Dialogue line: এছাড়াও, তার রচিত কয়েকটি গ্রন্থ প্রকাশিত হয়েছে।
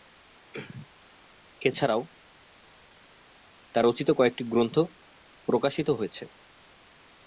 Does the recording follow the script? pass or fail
pass